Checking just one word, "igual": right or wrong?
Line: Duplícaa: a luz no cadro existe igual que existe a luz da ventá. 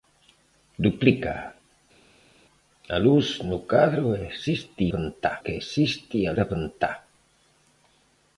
wrong